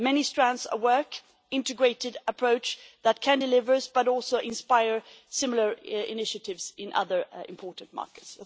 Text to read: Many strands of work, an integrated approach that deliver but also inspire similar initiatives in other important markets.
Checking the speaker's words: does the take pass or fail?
fail